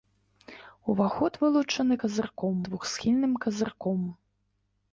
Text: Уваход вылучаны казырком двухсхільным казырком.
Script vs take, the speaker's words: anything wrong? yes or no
no